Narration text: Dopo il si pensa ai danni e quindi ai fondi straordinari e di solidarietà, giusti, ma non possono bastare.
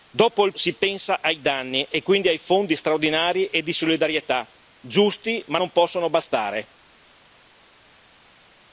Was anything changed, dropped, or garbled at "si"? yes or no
no